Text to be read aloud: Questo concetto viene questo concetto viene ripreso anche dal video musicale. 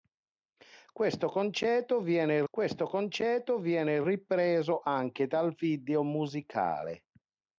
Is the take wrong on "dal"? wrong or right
right